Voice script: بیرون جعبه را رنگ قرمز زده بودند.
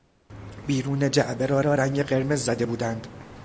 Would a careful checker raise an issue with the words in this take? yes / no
yes